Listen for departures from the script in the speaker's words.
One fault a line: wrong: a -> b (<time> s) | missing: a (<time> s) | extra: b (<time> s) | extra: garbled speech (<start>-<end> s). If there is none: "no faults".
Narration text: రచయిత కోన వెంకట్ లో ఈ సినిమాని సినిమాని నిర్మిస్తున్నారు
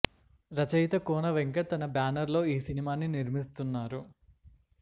extra: తన బ్యానర్ (1.7 s)
missing: సినిమాని (3.1 s)